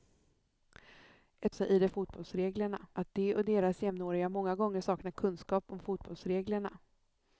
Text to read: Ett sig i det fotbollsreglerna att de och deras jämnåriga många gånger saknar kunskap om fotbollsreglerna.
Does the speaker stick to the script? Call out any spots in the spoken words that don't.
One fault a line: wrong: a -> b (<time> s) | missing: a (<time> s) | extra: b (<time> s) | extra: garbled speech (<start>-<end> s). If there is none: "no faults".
no faults